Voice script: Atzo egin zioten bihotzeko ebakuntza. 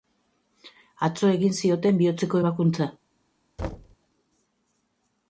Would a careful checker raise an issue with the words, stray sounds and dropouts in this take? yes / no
yes